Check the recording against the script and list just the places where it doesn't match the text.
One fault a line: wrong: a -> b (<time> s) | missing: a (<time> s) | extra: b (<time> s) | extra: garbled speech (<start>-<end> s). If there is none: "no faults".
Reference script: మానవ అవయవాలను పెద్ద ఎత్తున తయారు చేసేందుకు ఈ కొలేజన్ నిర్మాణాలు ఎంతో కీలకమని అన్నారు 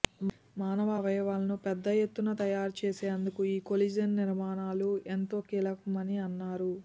no faults